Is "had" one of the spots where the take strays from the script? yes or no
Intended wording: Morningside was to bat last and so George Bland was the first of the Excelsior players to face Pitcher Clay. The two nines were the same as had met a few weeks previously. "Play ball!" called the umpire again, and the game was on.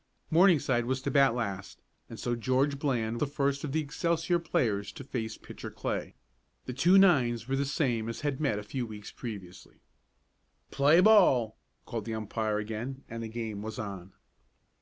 no